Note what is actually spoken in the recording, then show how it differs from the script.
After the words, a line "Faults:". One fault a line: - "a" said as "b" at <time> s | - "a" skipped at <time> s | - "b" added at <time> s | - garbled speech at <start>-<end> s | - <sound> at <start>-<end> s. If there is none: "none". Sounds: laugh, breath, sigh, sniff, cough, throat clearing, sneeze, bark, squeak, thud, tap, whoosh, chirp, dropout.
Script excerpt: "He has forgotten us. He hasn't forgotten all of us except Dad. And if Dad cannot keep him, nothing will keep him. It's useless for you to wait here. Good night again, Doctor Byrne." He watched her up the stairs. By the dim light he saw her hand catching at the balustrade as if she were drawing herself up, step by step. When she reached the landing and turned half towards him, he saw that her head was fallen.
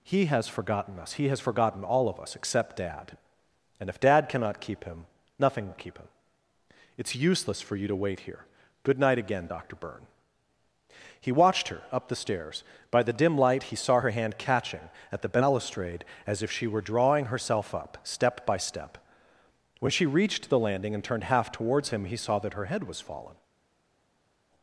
"He has forgotten us. He has forgotten all of us except Dad. And if Dad cannot keep him, nothing will keep him. It's useless for you to wait here. Good night again, Doctor Byrne." He watched her up the stairs. By the dim light he saw her hand catching at the balustrade as if she were drawing herself up, step by step. When she reached the landing and turned half towards him, he saw that her head was fallen.
Faults:
- "hasn't" said as "has" at 1.3 s